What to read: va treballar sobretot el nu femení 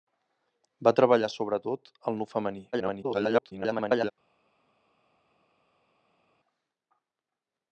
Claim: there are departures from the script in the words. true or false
true